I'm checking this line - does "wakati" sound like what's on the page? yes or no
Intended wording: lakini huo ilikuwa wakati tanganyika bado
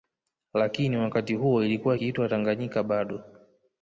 no